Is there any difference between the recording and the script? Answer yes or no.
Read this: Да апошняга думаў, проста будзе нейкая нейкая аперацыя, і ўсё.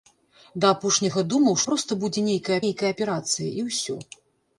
no